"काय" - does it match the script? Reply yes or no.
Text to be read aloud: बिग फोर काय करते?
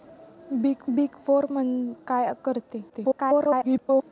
yes